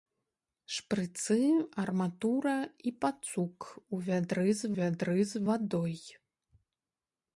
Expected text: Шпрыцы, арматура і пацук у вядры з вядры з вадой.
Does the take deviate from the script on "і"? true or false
false